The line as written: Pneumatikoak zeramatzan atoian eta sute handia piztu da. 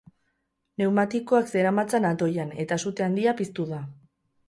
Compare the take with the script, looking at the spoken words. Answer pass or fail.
pass